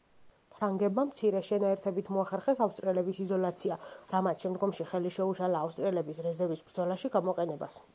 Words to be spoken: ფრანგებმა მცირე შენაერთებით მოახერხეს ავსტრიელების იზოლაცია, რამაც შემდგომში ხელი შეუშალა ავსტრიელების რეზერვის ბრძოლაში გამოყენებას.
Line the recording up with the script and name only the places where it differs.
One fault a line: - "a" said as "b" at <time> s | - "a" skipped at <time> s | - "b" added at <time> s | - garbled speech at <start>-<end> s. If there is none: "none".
none